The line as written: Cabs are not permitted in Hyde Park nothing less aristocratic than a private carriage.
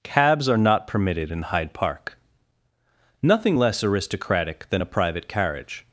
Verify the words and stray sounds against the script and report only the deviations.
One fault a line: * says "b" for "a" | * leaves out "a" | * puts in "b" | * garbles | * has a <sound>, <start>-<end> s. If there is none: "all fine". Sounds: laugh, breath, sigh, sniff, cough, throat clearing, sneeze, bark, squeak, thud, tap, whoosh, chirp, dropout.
all fine